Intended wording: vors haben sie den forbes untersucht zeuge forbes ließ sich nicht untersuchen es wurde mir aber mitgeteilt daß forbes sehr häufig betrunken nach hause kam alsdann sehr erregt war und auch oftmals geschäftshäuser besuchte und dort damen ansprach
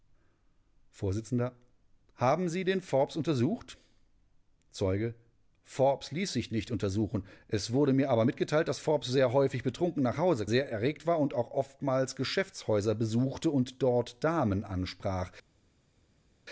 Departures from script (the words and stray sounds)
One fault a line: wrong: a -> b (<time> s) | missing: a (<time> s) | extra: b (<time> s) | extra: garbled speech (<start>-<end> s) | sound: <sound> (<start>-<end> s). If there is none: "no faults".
missing: kam alsdann (10.4 s)